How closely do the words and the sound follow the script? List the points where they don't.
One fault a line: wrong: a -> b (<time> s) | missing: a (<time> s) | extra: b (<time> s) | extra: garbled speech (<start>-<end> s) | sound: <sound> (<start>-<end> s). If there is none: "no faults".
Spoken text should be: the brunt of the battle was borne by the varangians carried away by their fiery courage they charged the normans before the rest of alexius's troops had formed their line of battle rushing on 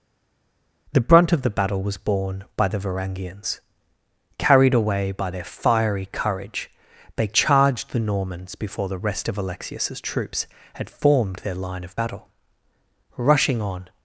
no faults